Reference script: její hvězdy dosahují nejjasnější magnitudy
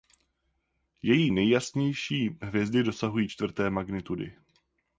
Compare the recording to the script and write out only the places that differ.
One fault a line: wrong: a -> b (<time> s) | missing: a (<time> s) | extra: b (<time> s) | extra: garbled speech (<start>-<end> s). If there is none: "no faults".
extra: nejjasnější (1.3 s)
wrong: nejjasnější -> čtvrté (3.3 s)